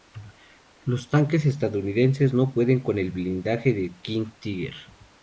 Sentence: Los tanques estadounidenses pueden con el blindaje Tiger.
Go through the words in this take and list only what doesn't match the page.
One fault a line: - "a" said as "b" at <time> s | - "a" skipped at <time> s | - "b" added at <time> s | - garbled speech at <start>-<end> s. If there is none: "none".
- "no" added at 2.3 s
- "del King" added at 3.7 s